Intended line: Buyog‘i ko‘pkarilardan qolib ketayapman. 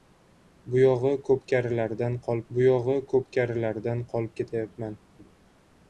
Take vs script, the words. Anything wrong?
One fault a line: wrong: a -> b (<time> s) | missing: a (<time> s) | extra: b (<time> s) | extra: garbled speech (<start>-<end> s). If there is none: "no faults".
extra: buyog‘i ko‘pkarilardan qolib (2.6 s)